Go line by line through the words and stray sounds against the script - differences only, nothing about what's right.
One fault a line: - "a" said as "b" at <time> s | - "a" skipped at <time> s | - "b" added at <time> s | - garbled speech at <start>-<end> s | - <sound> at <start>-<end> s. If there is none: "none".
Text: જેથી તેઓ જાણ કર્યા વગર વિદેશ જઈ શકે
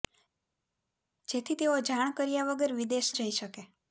none